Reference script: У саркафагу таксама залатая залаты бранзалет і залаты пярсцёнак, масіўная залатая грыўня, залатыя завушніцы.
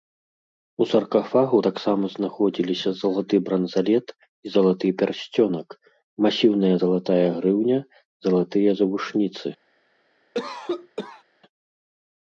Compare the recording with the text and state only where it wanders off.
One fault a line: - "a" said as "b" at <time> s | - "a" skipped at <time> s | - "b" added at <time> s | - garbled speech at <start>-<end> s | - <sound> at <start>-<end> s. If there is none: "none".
- "залатая" said as "знаходзіліся" at 2.2 s
- cough at 10.3-11.2 s